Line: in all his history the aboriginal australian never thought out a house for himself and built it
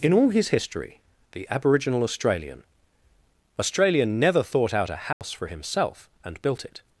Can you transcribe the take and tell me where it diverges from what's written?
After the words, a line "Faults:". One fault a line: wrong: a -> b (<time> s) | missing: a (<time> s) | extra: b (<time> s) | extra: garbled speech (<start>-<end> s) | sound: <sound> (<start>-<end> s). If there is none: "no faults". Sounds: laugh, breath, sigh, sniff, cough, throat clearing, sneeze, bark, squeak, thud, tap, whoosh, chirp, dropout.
in all his history the aboriginal australian australian never thought out a house for himself and built it
Faults:
extra: australian (3.6 s)
sound: dropout (5.1-5.2 s)